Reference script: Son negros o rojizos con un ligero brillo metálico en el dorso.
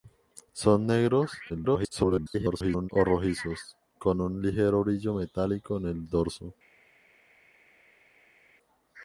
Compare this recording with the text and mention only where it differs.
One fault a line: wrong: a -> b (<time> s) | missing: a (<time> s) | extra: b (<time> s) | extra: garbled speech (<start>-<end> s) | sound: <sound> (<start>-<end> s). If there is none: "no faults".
extra: garbled speech (1.5-2.9 s)